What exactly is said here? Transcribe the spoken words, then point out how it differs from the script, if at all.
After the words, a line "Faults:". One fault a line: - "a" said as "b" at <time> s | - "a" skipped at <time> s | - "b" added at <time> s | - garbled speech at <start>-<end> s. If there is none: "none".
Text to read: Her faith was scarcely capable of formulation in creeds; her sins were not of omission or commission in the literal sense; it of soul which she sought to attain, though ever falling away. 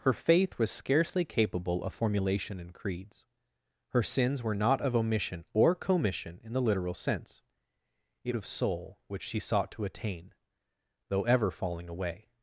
Her faith was scarcely capable of formulation in creeds; her sins were not of omission or commission in the literal sense; it of soul which she sought to attain, though ever falling away.
Faults:
none